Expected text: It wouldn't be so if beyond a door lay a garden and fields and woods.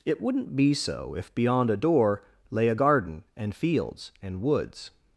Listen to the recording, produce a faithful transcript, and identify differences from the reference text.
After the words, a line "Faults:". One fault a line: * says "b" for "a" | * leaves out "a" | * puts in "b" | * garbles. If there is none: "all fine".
It wouldn't be so if beyond a door lay a garden and fields and woods.
Faults:
all fine